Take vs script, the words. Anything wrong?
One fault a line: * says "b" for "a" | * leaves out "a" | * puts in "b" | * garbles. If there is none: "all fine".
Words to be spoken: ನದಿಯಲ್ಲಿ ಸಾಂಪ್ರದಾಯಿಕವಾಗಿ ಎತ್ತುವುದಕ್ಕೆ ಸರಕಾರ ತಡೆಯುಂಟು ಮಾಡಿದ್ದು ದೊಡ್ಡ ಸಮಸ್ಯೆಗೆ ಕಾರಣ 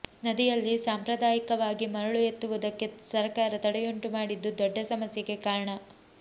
* puts in "ಮರಳು"